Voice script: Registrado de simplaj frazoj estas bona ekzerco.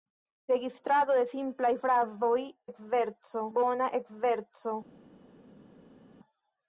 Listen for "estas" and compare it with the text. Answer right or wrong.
wrong